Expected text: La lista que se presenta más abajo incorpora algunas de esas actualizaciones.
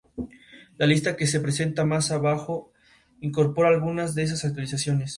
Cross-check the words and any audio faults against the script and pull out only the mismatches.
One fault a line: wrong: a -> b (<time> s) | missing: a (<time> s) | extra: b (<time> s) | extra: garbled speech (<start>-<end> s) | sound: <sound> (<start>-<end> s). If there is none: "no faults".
no faults